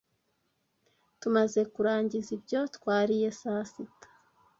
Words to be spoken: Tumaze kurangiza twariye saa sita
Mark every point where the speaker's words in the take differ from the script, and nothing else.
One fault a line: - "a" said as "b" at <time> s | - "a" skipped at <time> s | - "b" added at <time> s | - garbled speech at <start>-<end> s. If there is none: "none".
- "ibyo" added at 2.4 s